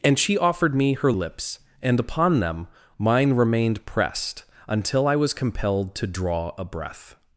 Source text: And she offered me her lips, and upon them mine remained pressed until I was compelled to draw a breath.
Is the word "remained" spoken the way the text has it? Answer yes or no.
yes